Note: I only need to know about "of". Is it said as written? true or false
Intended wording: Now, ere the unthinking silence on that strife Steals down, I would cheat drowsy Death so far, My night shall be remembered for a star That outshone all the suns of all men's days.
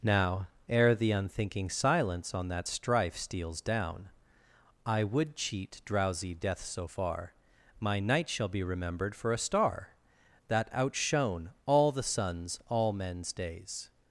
false